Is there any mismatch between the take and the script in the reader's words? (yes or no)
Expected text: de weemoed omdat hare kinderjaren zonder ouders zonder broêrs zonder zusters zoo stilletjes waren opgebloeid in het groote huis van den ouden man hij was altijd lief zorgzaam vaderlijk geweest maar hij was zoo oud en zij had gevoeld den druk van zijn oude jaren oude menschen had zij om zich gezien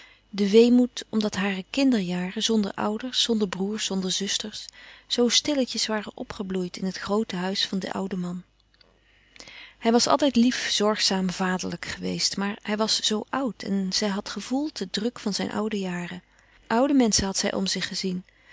no